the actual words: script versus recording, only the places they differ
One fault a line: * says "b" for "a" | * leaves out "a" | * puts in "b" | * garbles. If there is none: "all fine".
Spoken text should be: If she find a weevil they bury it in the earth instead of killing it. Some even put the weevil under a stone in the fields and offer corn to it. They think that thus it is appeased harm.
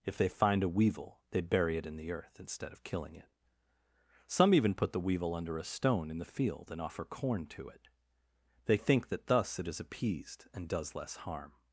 * says "they" for "she"
* says "field" for "fields"
* puts in "and does less"